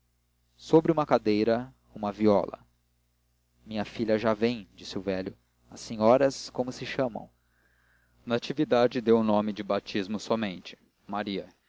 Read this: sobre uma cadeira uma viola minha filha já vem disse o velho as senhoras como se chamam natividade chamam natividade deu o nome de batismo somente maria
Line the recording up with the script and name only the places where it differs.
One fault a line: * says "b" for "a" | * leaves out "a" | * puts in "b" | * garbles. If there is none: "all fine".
* leaves out "chamam natividade"